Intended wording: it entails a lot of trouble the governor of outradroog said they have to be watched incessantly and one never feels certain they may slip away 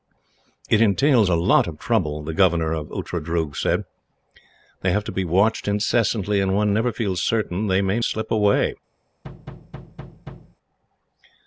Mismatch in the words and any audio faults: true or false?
true